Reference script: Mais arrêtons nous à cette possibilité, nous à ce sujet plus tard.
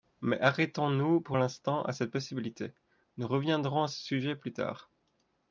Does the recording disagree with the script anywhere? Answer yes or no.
yes